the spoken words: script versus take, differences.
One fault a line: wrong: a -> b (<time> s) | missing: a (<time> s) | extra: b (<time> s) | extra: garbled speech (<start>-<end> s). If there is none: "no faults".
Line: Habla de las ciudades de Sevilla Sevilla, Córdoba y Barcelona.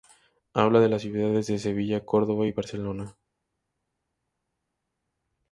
missing: Sevilla (2.0 s)